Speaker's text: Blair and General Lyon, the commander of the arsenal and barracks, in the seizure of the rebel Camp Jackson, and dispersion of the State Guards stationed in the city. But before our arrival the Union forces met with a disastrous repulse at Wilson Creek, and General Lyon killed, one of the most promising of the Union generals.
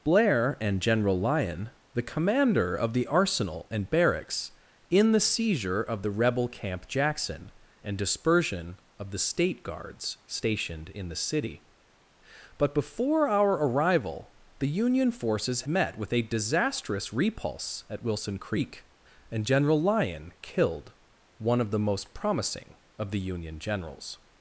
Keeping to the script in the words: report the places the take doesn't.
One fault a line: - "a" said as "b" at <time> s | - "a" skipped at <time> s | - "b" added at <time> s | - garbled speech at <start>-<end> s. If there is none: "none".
none